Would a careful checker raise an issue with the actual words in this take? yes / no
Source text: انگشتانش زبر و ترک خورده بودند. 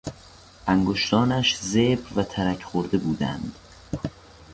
no